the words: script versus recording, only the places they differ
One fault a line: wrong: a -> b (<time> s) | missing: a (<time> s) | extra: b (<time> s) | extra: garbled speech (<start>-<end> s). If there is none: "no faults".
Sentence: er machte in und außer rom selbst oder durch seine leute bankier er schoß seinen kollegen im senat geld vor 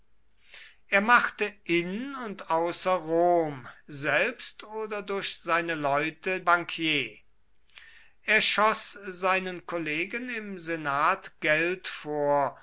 no faults